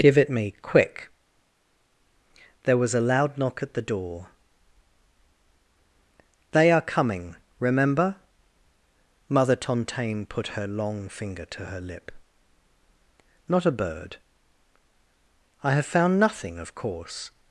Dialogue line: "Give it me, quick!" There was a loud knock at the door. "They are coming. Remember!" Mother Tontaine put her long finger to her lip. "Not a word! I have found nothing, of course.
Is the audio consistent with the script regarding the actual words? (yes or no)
no